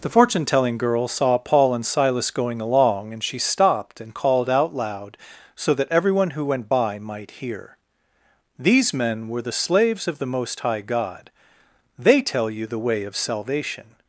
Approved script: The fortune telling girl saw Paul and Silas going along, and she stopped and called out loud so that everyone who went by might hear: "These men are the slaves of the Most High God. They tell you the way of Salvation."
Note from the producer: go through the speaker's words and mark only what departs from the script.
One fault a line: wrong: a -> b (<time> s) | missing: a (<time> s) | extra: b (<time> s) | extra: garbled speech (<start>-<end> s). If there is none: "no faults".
wrong: are -> were (9.3 s)